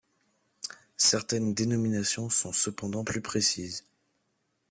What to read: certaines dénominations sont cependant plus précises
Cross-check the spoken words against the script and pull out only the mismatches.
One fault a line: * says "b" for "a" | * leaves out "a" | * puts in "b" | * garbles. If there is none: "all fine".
all fine